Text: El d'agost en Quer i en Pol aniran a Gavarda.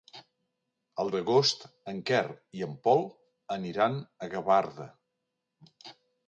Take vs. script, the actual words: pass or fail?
pass